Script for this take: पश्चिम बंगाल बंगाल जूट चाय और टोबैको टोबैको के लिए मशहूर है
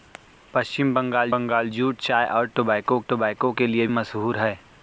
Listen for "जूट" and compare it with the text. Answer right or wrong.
right